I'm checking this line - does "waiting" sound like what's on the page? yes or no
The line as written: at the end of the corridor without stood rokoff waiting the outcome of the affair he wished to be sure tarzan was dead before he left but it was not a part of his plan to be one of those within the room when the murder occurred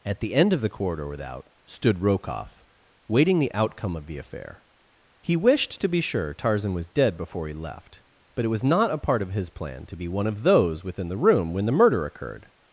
yes